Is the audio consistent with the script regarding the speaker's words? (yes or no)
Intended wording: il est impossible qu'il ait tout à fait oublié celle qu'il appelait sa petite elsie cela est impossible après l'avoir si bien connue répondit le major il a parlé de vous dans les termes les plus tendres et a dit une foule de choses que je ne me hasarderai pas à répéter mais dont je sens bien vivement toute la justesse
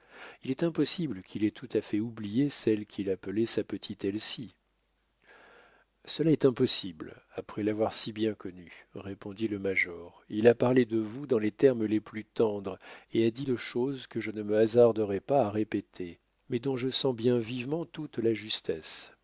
no